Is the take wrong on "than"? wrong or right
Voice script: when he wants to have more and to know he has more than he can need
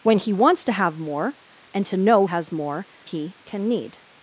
wrong